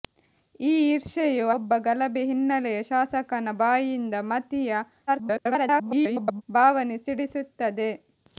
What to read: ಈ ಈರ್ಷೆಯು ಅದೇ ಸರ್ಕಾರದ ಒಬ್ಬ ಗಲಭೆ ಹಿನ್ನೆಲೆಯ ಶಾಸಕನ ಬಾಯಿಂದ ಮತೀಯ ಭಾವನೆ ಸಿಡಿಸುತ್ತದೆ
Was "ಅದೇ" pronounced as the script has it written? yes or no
no